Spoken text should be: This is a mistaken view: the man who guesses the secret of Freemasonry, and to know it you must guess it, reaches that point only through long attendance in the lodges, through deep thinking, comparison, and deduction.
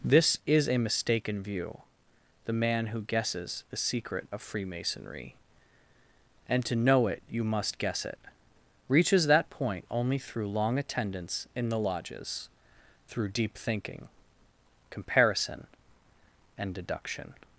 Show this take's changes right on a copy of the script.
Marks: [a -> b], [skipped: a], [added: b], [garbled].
This is a mistaken view: the man who guesses the secret of Freemasonry, and to know it you must guess it, reaches that point only through long attendance in the lodges, through deep thinking, comparison, and deduction.